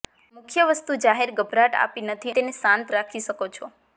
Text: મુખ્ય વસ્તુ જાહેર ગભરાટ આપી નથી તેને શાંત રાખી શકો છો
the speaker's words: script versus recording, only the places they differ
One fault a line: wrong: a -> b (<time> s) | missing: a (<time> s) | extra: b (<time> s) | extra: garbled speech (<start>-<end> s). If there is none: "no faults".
no faults